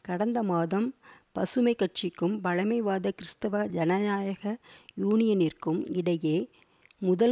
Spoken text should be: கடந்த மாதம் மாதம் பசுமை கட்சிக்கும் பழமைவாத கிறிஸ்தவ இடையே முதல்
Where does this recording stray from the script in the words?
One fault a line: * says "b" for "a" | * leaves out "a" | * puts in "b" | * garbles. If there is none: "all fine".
* leaves out "மாதம்"
* puts in "ஜனநாயக யூனியனிற்கும்"